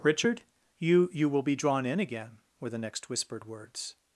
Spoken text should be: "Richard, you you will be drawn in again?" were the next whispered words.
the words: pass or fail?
pass